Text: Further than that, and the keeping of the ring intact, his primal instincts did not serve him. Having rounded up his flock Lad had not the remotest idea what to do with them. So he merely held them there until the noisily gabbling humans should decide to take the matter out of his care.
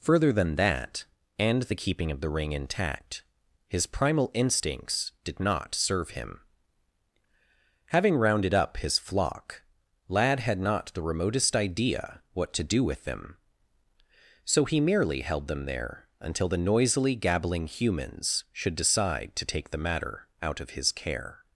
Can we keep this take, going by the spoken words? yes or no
yes